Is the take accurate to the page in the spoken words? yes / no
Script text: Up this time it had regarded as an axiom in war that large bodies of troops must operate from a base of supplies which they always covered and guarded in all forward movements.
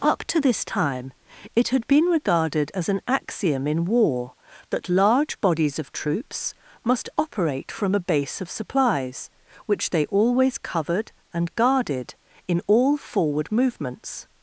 no